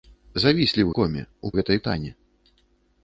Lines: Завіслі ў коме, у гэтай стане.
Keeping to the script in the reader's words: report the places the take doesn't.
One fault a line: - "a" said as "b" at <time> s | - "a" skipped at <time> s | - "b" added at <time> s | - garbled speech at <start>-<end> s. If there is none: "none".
none